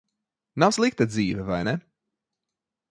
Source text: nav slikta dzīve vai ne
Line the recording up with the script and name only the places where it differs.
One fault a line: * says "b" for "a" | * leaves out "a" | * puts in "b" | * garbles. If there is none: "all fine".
all fine